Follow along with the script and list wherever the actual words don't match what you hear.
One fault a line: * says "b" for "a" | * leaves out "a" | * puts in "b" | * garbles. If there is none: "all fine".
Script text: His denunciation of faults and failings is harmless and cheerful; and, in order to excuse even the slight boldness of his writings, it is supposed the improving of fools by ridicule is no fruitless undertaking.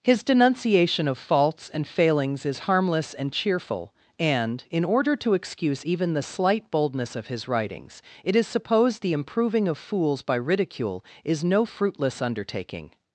all fine